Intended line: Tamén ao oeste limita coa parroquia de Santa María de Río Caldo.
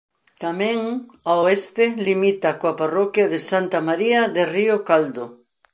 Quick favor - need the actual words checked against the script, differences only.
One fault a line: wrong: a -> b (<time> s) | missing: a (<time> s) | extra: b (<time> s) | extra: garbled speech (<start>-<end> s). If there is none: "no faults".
no faults